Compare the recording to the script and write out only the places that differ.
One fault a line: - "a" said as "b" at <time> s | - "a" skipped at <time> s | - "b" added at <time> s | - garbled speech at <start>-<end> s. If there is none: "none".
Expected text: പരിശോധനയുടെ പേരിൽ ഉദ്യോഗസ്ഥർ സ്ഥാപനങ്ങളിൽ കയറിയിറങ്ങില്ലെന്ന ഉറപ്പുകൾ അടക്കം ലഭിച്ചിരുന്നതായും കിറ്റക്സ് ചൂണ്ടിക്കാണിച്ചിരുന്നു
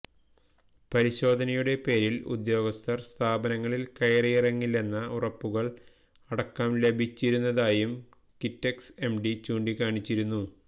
- "എംഡി" added at 9.0 s